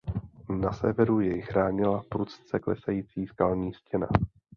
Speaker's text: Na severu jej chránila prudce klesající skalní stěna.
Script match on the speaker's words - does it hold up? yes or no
yes